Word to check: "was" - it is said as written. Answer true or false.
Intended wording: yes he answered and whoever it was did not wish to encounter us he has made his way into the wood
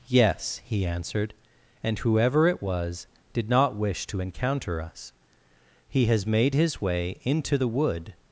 true